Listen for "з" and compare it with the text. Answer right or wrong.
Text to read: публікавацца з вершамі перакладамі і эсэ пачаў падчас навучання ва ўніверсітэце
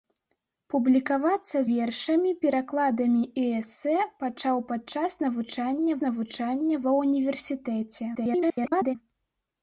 wrong